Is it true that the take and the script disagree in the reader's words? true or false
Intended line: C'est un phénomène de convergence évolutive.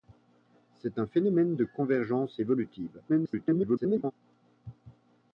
true